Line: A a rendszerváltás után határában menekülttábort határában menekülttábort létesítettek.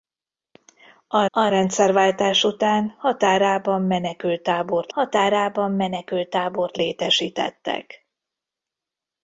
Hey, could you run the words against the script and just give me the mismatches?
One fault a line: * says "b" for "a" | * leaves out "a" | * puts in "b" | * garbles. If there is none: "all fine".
all fine